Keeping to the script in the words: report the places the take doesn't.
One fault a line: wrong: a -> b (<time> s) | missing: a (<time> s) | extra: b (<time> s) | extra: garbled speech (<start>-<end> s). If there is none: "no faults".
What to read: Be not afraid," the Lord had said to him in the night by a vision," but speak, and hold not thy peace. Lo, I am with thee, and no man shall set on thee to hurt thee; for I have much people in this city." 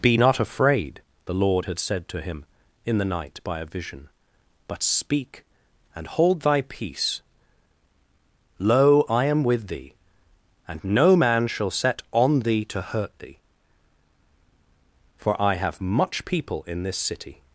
missing: not (6.4 s)